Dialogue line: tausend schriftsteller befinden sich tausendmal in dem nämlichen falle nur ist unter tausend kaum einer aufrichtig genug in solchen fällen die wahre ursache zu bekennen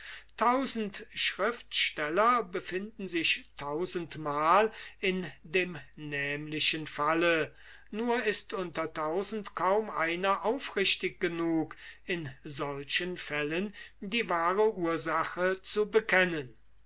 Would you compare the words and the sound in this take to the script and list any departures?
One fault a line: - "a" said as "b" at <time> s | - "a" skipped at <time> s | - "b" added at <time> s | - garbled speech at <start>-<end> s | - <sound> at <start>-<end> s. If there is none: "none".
none